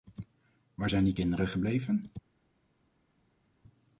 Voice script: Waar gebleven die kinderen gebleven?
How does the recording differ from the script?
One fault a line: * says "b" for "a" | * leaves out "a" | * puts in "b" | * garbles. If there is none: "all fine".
* says "zijn" for "gebleven"